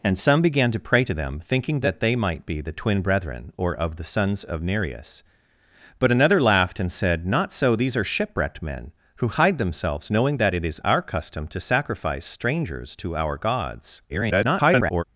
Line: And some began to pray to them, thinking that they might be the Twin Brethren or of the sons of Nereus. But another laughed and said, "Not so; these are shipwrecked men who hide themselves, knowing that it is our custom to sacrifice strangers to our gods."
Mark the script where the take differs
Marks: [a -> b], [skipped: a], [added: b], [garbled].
And some began to pray to them, thinking that they might be the Twin Brethren or of the sons of Nereus. But another laughed and said, "Not so; these are shipwrecked men who hide themselves, knowing that it is our custom to sacrifice strangers to our gods." [garbled]